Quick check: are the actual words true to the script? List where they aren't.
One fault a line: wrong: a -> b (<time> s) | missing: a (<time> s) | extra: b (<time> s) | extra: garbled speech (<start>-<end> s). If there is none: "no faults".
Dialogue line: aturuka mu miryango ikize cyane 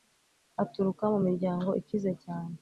no faults